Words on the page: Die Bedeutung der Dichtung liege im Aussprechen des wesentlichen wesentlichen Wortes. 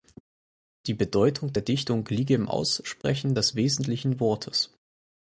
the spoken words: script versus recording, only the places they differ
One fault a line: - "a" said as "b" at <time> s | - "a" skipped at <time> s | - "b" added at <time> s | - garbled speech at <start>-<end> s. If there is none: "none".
- "wesentlichen" skipped at 4.2 s